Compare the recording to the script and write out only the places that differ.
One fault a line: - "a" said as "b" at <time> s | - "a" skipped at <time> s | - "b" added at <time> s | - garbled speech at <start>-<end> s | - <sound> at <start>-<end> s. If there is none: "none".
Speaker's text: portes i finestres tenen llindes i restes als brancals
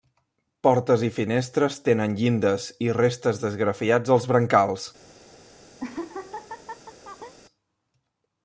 - "d'esgrafiats" added at 3.5 s
- laugh at 5.8-7.3 s